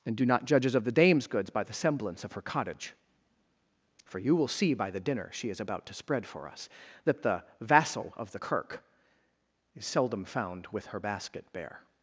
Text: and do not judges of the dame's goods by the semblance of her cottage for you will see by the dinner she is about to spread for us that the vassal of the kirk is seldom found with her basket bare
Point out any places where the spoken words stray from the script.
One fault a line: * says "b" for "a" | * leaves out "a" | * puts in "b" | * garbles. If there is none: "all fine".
all fine